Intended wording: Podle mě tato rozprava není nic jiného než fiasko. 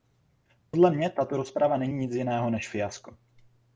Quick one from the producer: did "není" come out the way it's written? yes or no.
yes